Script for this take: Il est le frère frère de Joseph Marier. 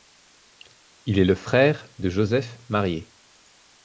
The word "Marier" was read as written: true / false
true